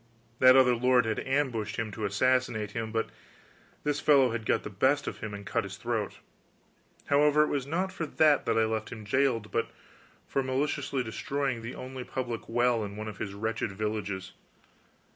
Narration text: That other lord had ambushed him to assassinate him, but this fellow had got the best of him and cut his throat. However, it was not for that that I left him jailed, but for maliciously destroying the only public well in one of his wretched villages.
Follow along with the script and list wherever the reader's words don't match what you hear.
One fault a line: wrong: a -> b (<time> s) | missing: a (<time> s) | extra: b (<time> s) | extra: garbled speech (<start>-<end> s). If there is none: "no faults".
no faults